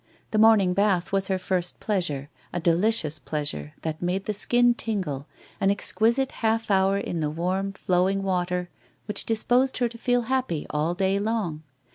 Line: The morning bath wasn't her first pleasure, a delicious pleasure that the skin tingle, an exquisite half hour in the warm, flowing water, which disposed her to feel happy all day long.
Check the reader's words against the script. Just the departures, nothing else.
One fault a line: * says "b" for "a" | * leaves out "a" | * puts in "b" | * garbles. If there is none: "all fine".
* says "was" for "wasn't"
* puts in "made"